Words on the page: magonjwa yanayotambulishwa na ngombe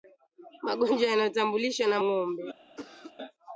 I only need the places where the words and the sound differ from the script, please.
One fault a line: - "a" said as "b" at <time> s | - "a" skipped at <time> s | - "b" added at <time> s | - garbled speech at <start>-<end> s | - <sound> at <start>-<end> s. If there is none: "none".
- cough at 2.8-3.2 s